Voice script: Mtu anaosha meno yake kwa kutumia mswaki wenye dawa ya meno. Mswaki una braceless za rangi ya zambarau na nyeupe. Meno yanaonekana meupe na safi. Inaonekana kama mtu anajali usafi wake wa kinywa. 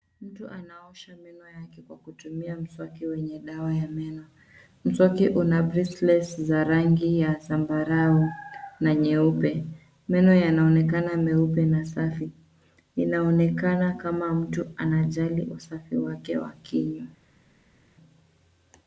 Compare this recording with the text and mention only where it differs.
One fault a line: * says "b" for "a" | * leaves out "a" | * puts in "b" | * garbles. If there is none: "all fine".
all fine